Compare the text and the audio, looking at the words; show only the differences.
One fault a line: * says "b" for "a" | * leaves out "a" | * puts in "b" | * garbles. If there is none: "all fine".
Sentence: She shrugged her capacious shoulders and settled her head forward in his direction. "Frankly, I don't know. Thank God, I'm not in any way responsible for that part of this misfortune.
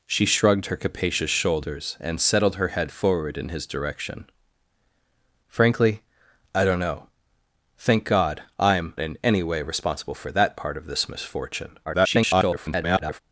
* leaves out "not"
* garbles